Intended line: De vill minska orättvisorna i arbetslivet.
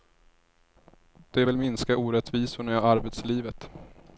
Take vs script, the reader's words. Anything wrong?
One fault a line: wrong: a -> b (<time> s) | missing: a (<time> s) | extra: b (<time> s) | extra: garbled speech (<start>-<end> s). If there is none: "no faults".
no faults